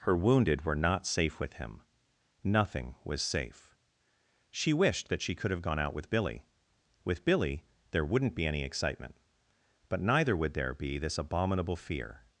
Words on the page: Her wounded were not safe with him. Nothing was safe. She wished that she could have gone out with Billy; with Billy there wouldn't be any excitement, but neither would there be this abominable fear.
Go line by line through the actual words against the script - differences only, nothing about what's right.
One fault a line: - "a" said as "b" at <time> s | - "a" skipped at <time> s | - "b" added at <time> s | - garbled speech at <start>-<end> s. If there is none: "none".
none